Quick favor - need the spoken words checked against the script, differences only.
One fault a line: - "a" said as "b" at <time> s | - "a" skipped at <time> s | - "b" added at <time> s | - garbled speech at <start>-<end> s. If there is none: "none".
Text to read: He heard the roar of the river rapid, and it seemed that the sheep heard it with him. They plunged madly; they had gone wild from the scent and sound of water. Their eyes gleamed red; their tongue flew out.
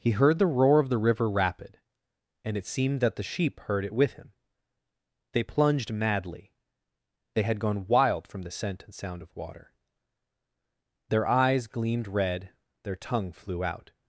none